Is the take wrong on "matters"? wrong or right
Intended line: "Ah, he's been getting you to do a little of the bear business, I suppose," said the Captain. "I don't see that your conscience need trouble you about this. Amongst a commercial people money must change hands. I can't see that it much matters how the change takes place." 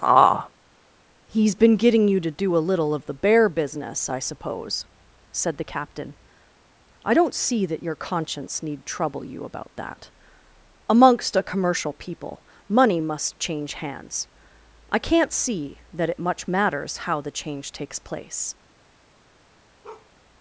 right